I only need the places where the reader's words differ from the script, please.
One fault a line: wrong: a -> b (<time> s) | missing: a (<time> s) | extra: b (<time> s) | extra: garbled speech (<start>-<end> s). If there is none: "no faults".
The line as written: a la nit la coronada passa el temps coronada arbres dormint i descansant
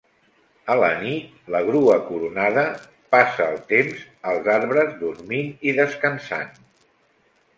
extra: grua (1.7 s)
wrong: coronada -> als (4.3 s)